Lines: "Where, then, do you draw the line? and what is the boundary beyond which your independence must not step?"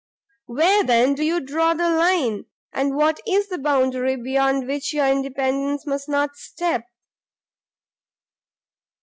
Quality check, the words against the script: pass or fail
pass